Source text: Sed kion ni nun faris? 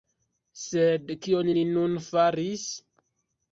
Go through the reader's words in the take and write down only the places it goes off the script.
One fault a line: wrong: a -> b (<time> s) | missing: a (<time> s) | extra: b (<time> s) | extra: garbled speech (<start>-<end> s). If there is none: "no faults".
no faults